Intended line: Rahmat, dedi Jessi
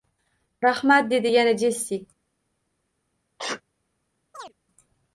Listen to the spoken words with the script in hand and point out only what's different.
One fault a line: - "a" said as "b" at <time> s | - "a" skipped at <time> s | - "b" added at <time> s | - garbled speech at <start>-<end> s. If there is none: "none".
- "yana" added at 1.3 s